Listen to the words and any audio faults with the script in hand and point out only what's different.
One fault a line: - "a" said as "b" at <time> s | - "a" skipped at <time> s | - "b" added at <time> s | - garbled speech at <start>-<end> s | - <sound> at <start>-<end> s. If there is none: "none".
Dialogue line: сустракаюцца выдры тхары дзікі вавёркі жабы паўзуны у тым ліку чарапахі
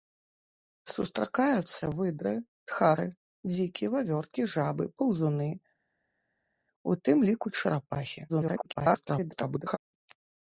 - garbled speech at 8.3-9.8 s